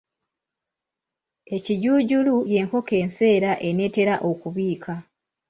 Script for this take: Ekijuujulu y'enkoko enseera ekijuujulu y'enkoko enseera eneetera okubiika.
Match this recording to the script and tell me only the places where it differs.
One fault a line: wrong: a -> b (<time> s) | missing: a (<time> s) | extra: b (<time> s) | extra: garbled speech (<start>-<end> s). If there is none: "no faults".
missing: ekijuujulu y'enkoko enseera (3.5 s)